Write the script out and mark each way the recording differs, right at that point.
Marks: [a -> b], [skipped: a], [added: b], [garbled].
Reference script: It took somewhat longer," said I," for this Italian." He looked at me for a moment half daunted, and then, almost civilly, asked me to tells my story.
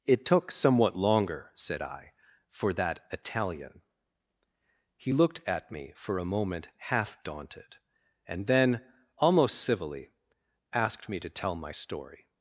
It took somewhat longer," said I," for [this -> that] Italian." He looked at me for a moment half daunted, and then, almost civilly, asked me to [tells -> tell] my story.